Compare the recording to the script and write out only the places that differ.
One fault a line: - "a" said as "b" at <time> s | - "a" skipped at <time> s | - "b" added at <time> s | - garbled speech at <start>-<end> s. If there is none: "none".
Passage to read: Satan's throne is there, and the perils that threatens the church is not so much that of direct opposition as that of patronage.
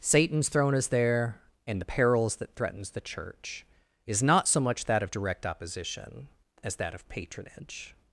none